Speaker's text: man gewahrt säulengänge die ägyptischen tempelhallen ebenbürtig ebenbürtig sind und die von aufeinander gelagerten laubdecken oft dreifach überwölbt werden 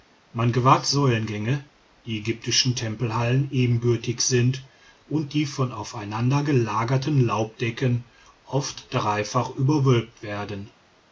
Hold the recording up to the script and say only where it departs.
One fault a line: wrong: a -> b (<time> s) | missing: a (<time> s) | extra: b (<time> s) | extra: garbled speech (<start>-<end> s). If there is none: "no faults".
missing: ebenbürtig (4.2 s)